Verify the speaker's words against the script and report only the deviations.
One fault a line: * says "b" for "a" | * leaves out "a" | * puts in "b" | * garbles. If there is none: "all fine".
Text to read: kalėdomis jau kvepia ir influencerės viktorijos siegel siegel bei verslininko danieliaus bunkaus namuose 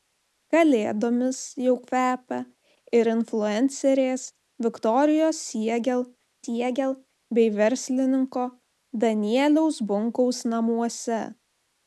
all fine